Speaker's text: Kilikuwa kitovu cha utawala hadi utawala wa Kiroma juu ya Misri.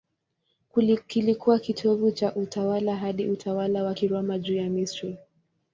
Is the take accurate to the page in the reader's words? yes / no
yes